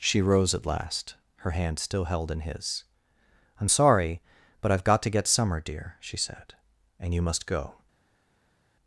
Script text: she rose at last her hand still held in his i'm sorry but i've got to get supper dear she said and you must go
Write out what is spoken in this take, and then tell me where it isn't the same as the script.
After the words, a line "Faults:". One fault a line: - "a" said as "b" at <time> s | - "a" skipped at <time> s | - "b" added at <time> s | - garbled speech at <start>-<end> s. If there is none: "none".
she rose at last her hand still held in his i'm sorry but i've got to get summer dear she said and you must go
Faults:
- "supper" said as "summer" at 5.3 s